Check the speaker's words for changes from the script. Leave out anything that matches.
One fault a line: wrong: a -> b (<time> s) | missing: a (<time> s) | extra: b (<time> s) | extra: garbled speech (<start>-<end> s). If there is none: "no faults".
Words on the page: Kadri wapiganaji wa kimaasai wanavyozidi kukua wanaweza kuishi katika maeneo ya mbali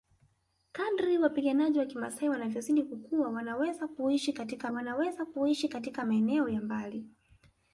extra: wanaweza kuishi katika (4.7 s)